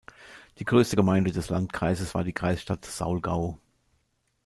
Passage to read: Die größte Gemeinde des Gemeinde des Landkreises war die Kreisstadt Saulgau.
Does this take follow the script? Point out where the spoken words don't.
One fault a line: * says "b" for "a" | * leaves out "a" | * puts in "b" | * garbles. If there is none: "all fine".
* leaves out "Gemeinde des"